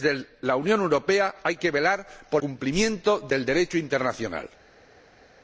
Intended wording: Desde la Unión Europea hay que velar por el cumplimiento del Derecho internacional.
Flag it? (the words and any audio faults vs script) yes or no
yes